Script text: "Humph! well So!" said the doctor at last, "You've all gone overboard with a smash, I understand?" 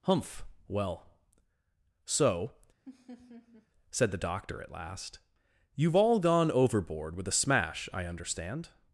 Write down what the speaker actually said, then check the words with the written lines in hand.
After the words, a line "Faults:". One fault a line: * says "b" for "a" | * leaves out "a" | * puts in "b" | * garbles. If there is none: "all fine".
"Humph! well So!" said the doctor at last, "You've all gone overboard with a smash, I understand?"
Faults:
all fine